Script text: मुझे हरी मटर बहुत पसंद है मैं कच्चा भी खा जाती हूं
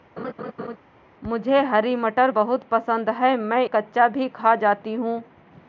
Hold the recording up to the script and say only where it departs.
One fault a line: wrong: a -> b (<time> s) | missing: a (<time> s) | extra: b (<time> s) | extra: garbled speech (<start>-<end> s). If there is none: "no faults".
no faults